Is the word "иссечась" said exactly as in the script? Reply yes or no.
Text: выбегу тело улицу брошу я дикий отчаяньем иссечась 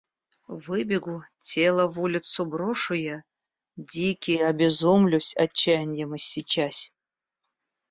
yes